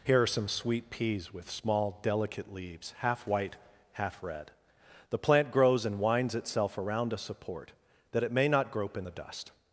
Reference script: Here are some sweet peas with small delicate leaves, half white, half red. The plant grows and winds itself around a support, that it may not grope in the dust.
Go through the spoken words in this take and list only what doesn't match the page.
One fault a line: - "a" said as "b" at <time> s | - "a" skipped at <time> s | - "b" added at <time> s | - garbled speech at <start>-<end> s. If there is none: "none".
none